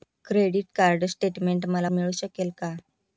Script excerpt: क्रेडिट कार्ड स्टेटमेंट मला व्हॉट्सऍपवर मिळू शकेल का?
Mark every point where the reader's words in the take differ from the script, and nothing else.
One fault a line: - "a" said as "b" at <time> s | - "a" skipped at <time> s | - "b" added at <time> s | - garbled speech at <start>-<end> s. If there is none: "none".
- "व्हॉट्सऍपवर" skipped at 1.9 s